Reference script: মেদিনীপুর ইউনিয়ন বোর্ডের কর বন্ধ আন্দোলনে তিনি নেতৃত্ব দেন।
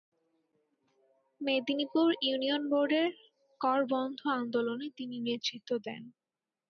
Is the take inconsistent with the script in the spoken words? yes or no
no